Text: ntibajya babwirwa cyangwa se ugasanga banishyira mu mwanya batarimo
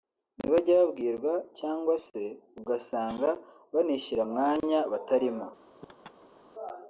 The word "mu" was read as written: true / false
false